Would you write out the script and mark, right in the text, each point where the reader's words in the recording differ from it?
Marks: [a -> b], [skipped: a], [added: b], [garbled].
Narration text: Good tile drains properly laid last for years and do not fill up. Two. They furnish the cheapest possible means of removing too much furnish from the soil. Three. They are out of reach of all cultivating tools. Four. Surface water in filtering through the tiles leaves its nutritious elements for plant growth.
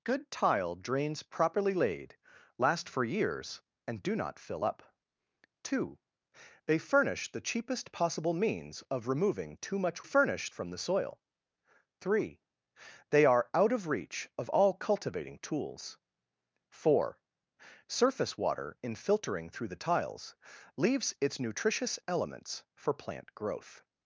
Good tile drains properly laid last for years and do not fill up. Two. They furnish the cheapest possible means of removing too much furnish from the soil. Three. They are out of reach of all cultivating tools. Four. Surface water in filtering through the tiles leaves its nutritious elements for plant growth.